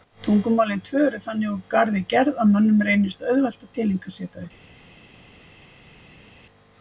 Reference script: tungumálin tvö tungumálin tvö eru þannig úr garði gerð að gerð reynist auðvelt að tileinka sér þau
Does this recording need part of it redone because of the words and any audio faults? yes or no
yes